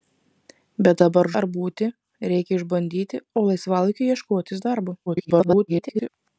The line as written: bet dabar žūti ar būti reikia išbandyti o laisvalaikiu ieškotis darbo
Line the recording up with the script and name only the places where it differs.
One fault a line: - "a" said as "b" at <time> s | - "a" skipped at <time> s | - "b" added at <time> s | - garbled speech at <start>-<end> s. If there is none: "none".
- "žūti" skipped at 1.3 s
- garbled speech at 5.1-6.1 s